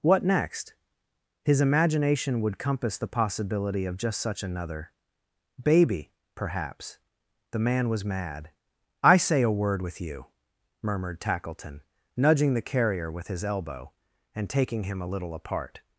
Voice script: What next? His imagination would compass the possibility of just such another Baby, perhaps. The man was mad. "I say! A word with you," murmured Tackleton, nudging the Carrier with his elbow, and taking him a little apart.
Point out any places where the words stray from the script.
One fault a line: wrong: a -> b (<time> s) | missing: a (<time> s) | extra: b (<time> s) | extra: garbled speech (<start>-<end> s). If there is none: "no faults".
no faults